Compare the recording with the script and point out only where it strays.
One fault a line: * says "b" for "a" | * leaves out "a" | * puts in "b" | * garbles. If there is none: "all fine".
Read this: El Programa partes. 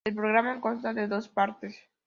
* puts in "consta de dos"